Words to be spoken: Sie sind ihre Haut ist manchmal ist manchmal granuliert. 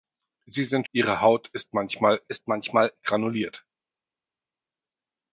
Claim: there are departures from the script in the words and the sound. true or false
false